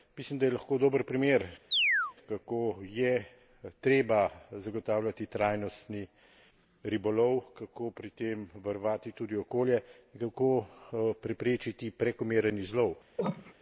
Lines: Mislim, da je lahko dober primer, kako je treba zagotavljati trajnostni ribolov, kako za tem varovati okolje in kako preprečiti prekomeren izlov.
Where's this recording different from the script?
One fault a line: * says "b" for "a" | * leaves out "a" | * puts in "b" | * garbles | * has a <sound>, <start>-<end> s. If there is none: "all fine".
* has a chirp, 1.7-2.1 s
* says "pri" for "za"
* puts in "tudi"
* has a cough, 13.2-13.5 s